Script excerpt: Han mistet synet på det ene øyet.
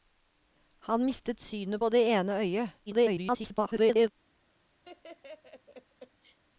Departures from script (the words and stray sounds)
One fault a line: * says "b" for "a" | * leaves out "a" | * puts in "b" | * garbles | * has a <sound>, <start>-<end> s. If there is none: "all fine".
* garbles
* has a laugh, 4.8-6.4 s